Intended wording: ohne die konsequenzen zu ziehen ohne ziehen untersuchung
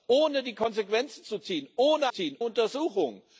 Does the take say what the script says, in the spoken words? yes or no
yes